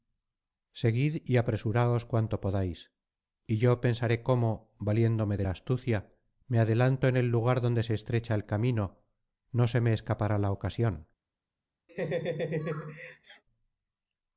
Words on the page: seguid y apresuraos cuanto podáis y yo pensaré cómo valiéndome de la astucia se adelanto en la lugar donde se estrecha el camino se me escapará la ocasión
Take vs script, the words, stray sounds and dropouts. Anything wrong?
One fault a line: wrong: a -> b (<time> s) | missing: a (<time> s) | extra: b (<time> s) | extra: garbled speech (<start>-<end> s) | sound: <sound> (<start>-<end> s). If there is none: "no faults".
wrong: se -> me (6.5 s)
wrong: la -> el (7.2 s)
extra: no (9.5 s)
sound: laugh (11.9-13.4 s)